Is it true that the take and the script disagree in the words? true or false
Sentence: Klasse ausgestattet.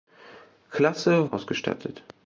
false